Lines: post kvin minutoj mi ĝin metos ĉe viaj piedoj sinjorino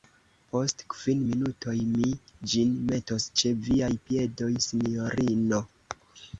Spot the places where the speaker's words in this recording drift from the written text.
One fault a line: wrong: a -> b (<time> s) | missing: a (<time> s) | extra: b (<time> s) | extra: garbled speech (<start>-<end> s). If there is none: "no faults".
no faults